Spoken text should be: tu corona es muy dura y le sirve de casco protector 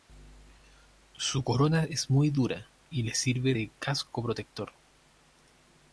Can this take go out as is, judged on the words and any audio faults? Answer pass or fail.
fail